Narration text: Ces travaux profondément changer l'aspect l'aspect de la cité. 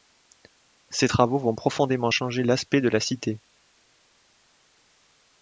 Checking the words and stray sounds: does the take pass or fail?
fail